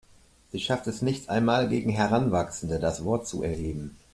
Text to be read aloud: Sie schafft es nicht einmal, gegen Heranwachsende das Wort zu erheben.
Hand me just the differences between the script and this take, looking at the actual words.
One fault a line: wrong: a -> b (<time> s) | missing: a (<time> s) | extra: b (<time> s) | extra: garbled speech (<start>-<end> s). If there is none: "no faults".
no faults